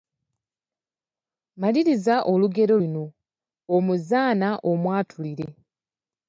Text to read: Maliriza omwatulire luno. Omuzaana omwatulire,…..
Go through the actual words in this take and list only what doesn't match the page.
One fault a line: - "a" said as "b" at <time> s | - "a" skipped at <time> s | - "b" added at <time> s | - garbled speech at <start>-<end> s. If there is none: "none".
- "omwatulire" said as "olugero" at 2.3 s